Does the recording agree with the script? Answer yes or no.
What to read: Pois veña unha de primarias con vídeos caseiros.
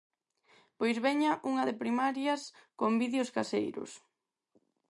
yes